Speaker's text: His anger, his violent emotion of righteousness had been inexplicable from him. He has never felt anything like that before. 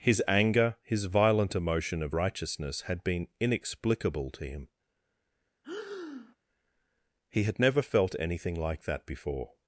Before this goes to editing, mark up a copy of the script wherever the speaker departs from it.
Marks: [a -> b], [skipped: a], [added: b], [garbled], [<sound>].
His anger, his violent emotion of righteousness had been inexplicable [from -> to] him. [breath] He [has -> had] never felt anything like that before.